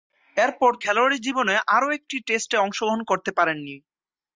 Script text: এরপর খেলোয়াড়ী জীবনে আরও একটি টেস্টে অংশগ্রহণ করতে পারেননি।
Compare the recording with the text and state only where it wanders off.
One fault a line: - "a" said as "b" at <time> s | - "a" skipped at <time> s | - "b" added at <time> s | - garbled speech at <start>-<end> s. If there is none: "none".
none